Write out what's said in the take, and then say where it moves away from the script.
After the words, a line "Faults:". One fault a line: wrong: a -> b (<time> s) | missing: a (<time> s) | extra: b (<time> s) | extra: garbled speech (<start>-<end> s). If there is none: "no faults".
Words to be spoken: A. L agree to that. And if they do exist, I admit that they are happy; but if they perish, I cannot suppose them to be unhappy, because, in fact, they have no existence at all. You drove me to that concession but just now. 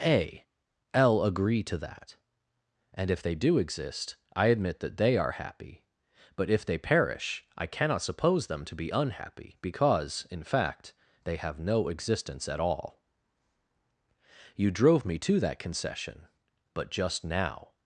A. L agree to that. And if they do exist, I admit that they are happy; but if they perish, I cannot suppose them to be unhappy, because, in fact, they have no existence at all. You drove me to that concession but just now.
Faults:
no faults